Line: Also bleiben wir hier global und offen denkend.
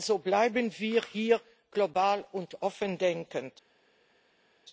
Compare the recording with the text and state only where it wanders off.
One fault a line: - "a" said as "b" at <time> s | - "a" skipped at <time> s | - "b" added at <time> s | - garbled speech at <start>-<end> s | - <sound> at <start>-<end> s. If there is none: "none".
none